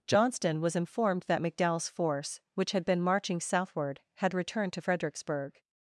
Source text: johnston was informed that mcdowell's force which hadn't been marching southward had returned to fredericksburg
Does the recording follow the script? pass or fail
fail